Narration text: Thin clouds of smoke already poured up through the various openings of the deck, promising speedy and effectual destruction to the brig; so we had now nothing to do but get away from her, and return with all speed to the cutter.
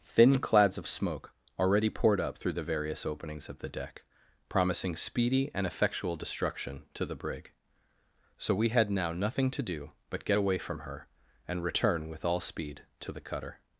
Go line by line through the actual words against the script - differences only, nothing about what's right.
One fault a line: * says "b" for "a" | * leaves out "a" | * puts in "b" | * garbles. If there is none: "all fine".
all fine